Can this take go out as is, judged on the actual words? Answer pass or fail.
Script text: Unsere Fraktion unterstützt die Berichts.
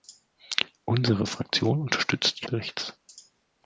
pass